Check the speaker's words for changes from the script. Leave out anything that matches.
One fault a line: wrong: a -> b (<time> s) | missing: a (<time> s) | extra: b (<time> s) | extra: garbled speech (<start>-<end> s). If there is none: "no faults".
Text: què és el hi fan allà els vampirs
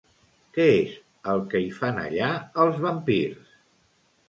extra: que (1.5 s)